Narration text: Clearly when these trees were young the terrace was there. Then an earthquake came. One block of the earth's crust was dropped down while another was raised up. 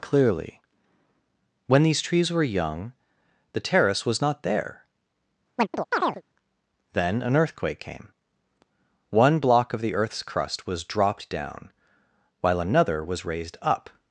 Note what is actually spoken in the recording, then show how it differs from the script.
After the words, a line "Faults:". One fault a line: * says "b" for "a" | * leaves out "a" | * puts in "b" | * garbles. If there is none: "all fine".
Clearly when these trees were young the terrace was not there. Then an earthquake came. One block of the earth's crust was dropped down while another was raised up.
Faults:
* puts in "not"